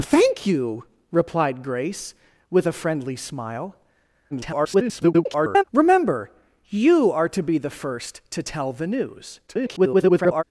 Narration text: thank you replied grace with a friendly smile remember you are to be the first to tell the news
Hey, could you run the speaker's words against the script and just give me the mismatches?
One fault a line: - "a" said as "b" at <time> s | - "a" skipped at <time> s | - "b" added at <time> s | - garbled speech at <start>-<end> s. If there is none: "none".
- garbled speech at 4.3-5.6 s
- garbled speech at 9.5-10.4 s